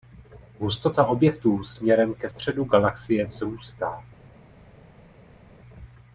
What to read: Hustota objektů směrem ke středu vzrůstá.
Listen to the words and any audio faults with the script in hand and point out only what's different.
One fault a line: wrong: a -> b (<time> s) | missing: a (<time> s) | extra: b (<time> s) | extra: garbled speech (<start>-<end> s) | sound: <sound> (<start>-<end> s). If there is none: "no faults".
extra: galaxie (2.6 s)